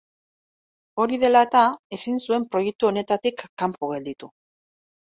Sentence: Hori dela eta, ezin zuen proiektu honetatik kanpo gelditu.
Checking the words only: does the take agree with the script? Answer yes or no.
yes